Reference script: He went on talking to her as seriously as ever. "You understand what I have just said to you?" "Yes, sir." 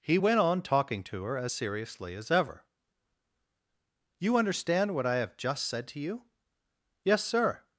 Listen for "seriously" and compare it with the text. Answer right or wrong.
right